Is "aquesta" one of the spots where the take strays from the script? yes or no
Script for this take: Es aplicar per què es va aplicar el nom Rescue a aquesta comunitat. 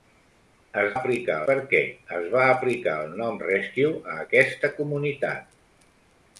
no